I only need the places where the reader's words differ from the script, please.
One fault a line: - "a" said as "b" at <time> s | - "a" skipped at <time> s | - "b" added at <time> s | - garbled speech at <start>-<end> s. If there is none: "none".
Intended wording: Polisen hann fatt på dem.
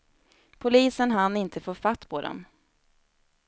- "inte få" added at 1.4 s